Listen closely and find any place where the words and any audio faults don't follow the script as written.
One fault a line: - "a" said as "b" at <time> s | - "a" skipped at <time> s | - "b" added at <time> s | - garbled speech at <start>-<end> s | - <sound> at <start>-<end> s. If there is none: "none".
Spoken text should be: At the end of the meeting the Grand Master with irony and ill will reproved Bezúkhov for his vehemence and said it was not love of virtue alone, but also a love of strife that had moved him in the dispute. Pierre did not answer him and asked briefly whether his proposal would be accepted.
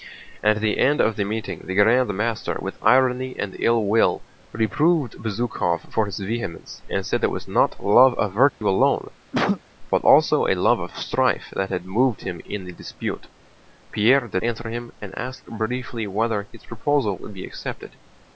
- dropout at 8.5-8.6 s
- cough at 9.3-9.6 s
- "not" skipped at 14.4 s